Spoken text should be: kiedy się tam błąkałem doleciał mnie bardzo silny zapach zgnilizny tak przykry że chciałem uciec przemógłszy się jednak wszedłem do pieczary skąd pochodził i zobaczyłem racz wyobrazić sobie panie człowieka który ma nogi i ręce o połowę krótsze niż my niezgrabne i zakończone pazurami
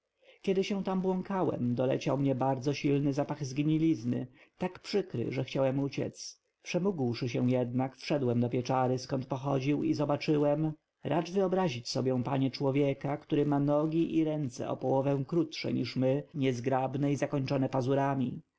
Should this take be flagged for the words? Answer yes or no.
no